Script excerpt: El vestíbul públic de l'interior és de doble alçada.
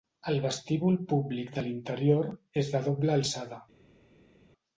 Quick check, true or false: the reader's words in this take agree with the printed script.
true